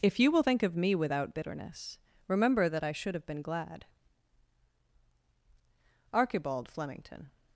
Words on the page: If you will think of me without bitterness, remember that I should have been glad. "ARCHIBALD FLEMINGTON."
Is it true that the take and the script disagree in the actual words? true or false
false